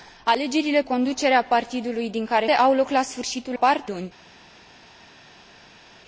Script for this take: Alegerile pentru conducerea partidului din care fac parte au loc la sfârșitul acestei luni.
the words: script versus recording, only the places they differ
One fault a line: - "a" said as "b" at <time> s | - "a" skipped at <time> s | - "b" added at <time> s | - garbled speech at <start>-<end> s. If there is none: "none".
- "pentru" skipped at 0.8 s
- "fac parte" skipped at 2.5 s
- "acestei" said as "parte" at 3.6 s